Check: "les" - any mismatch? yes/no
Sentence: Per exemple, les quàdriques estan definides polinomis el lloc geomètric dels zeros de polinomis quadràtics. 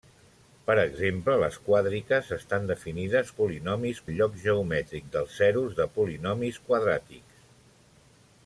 no